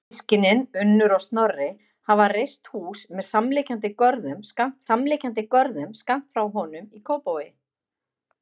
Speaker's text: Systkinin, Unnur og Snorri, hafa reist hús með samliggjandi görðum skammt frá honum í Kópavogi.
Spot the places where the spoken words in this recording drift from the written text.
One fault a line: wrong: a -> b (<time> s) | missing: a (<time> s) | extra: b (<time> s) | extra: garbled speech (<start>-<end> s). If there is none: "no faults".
extra: samliggjandi görðum skammt (4.8 s)